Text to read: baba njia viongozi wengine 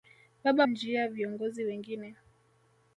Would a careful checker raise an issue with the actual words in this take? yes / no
no